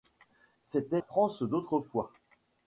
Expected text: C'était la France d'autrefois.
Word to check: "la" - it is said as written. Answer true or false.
false